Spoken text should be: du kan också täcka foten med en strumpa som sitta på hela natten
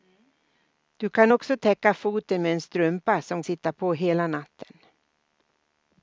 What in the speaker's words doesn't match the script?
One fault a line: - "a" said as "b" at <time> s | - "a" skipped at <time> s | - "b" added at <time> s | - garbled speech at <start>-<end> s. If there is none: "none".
none